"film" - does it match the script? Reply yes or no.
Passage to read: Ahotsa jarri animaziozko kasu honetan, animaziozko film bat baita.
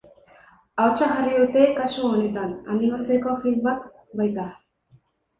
yes